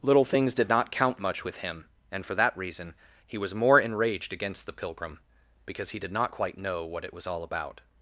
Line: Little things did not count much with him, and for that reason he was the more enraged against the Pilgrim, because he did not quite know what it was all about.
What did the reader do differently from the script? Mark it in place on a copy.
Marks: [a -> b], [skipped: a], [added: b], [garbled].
Little things did not count much with him, and for that reason he was [skipped: the] more enraged against the Pilgrim, because he did not quite know what it was all about.